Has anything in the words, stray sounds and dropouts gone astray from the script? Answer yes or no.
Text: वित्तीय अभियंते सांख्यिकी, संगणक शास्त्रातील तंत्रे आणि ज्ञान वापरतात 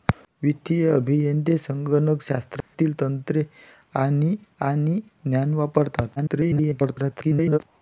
yes